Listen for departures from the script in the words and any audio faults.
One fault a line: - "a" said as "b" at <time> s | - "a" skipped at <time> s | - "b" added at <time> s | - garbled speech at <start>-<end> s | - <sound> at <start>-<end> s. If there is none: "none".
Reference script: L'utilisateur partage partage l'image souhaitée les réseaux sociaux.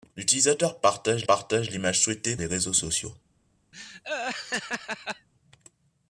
- laugh at 3.7-5.3 s